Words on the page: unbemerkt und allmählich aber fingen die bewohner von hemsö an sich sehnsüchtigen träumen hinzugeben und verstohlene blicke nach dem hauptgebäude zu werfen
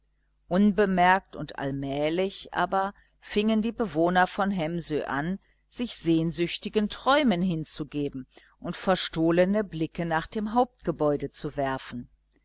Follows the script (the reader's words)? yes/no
yes